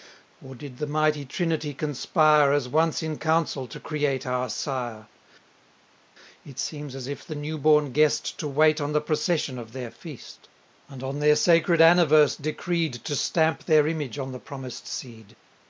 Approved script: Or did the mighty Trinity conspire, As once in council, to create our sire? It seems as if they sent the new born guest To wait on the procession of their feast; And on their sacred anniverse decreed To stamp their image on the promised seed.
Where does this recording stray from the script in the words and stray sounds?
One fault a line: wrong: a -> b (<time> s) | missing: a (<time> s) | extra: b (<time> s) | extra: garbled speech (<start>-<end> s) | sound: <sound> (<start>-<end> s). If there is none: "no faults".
missing: they sent (7.3 s)